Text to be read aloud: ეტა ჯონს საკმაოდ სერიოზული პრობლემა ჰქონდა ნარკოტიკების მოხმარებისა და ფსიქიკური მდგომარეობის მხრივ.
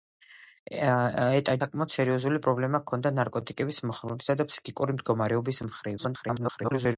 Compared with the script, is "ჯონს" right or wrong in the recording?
wrong